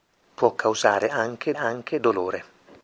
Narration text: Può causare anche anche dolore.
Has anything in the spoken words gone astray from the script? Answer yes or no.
no